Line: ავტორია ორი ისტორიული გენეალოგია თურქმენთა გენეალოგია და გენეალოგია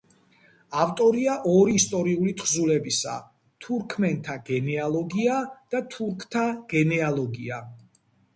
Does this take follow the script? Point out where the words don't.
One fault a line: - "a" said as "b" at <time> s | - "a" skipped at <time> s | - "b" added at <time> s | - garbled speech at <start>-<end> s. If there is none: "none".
- "გენეალოგია" said as "თხზულებისა" at 2.4 s
- "თურქთა" added at 6.0 s